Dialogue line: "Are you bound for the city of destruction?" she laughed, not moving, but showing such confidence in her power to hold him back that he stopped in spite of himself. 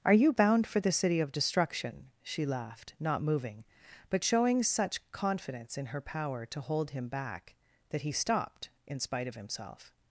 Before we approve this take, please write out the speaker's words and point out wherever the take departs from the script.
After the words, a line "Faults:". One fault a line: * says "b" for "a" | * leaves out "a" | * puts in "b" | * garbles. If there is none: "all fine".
"Are you bound for the city of destruction?" she laughed, not moving, but showing such confidence in her power to hold him back that he stopped in spite of himself.
Faults:
all fine